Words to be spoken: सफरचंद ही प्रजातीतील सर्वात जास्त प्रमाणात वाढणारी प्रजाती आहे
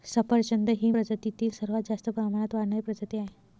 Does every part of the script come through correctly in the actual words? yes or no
yes